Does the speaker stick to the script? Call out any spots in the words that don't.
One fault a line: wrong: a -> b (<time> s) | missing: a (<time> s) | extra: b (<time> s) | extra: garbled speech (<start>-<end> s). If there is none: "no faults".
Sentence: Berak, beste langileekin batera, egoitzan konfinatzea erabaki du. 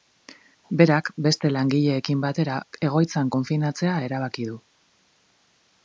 no faults